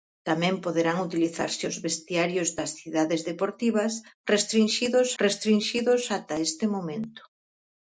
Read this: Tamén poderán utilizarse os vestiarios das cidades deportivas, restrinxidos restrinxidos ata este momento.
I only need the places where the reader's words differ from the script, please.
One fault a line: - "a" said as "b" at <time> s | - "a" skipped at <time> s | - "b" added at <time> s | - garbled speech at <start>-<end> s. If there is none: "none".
none